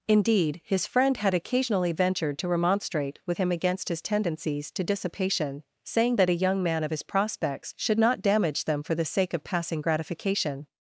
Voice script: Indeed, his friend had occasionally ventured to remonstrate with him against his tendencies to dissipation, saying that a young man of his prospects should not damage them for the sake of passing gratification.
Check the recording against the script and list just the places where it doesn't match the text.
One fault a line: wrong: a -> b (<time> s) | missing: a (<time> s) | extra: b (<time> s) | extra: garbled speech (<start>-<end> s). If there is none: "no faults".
no faults